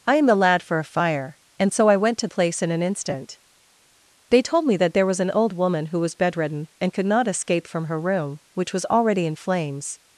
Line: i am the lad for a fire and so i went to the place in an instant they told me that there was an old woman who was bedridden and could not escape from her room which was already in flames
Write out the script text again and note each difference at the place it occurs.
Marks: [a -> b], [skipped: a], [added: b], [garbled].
i am the lad for a fire and so i went to [skipped: the] place in an instant they told me that there was an old woman who was bedridden and could not escape from her room which was already in flames